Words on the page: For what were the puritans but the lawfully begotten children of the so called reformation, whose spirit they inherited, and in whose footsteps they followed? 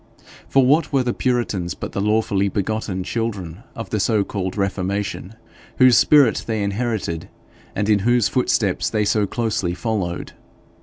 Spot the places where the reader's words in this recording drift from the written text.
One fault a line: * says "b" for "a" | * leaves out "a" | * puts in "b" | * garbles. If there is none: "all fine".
* puts in "so closely"